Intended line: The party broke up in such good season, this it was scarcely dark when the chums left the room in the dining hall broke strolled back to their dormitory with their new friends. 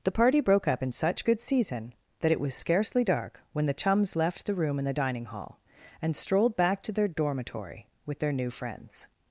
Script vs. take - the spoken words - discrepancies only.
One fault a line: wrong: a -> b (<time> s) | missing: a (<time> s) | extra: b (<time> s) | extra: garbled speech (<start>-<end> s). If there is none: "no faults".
wrong: this -> that (2.2 s)
wrong: broke -> and (6.0 s)